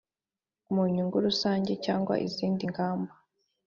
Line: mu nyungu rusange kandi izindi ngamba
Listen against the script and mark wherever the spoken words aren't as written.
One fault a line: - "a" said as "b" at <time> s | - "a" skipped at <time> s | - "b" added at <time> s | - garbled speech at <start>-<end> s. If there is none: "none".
- "kandi" said as "cyangwa" at 1.9 s